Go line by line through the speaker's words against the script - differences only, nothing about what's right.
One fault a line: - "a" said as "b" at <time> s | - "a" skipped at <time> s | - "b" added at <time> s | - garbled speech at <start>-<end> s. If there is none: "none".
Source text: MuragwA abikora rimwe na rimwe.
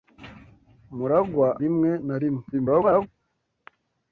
- "abikora" skipped at 1.5 s
- garbled speech at 2.5-3.1 s